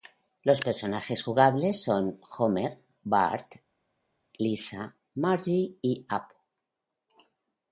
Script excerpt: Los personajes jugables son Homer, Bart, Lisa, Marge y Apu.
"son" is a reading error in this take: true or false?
false